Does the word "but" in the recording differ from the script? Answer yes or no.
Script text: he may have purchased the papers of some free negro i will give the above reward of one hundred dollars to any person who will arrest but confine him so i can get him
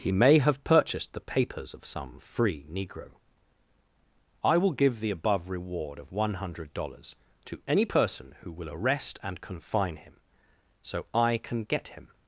yes